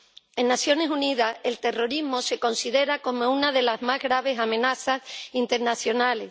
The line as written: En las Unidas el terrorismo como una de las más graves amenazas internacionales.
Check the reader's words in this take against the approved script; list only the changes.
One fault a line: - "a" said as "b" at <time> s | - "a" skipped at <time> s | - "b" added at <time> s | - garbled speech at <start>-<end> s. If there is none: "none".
- "Naciones" added at 0.6 s
- "se considera" added at 2.2 s